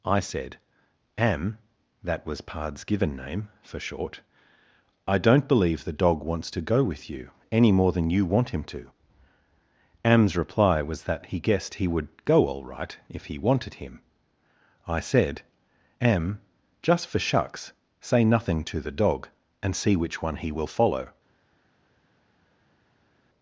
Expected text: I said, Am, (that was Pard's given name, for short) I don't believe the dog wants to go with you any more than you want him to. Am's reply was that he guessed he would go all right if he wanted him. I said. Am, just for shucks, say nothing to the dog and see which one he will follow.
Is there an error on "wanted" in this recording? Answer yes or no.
no